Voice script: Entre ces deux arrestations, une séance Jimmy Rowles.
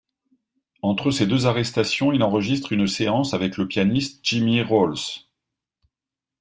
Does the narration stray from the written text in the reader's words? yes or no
yes